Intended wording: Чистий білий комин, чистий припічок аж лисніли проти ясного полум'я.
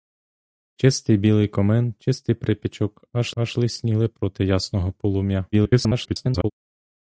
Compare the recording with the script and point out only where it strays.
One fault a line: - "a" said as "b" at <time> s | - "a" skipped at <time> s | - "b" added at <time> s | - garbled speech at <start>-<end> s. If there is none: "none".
- "аж" added at 3.4 s
- garbled speech at 5.5-6.5 s